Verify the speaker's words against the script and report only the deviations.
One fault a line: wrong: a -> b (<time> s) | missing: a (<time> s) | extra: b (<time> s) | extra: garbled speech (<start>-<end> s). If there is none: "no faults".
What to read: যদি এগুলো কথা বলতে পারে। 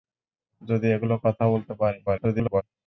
extra: garbled speech (2.1-2.6 s)